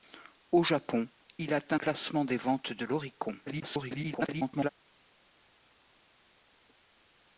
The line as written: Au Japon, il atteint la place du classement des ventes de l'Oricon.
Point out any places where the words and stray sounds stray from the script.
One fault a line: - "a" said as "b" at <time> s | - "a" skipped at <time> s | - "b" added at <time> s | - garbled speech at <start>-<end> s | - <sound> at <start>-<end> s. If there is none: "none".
- "la place du" skipped at 1.8 s
- garbled speech at 3.5-4.7 s